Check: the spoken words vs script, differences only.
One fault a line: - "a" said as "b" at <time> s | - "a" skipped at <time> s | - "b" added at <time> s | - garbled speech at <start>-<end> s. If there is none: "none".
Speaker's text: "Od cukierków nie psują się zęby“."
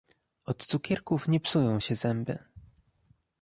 none